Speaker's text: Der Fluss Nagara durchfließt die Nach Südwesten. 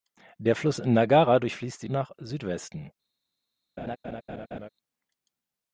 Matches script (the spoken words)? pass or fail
pass